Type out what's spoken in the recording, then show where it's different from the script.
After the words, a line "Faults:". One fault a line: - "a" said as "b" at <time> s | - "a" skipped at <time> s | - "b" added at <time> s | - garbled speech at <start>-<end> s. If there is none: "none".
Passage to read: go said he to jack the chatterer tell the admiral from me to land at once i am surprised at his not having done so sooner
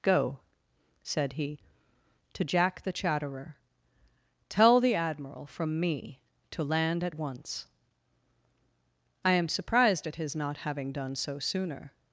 go said he to jack the chatterer tell the admiral from me to land at once i am surprised at his not having done so sooner
Faults:
none